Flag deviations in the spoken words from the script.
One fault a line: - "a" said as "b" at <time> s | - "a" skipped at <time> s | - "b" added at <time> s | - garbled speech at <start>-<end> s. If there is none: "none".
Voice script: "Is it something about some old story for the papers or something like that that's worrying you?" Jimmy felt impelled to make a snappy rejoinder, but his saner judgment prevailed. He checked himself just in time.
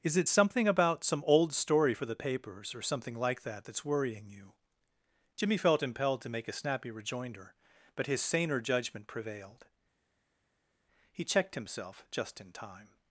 none